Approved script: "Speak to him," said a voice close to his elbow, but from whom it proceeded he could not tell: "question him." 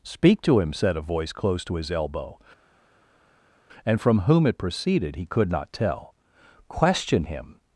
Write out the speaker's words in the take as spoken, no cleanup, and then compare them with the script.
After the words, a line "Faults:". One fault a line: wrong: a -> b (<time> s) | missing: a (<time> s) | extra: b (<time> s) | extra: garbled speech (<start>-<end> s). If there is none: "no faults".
"Speak to him," said a voice close to his elbow, and from whom it proceeded he could not tell: "question him."
Faults:
wrong: but -> and (3.8 s)